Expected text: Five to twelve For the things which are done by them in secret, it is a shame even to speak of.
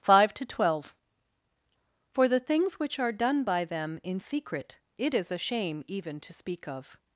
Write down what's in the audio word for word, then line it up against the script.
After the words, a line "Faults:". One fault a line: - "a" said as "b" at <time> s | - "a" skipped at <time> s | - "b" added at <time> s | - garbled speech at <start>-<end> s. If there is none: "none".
Five to twelve For the things which are done by them in secret, it is a shame even to speak of.
Faults:
none